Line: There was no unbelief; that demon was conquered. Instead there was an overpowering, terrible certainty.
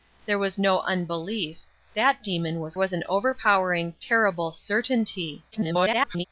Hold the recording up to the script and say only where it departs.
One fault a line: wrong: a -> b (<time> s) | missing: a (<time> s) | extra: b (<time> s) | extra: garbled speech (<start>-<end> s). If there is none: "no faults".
missing: conquered Instead there (2.8 s)
extra: garbled speech (5.5-6.2 s)